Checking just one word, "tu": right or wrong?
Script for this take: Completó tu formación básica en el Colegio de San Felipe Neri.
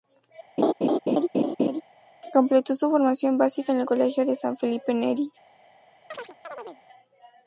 wrong